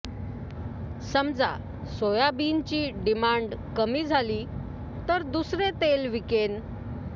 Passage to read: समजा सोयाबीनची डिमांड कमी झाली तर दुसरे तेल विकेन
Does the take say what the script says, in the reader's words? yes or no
yes